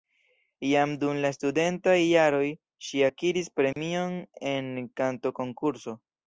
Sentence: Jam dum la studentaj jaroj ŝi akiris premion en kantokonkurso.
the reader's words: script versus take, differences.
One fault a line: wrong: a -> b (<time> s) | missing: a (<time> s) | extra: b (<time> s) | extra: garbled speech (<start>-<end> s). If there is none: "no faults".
no faults